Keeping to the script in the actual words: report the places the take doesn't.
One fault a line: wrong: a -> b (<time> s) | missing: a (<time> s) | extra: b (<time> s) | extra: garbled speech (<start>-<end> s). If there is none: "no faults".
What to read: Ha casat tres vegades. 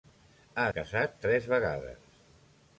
no faults